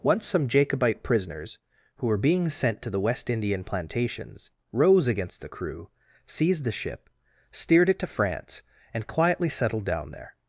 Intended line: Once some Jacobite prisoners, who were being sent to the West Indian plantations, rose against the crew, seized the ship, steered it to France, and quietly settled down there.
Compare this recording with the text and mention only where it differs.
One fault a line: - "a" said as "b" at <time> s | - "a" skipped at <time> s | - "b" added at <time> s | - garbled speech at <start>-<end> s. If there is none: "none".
none